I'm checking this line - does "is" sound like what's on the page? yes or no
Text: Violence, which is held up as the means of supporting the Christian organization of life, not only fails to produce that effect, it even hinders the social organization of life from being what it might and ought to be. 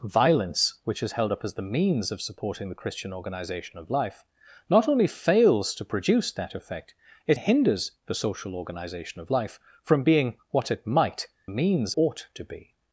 yes